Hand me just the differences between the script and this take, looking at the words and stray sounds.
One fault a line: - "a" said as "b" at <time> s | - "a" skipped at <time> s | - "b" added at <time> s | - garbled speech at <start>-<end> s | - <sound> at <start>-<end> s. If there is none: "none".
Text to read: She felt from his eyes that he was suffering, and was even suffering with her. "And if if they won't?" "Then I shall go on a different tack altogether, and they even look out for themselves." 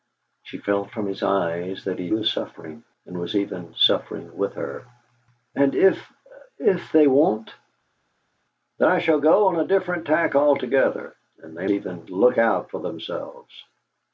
none